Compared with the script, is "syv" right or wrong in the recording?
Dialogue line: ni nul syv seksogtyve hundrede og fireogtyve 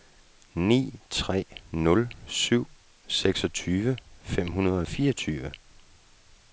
right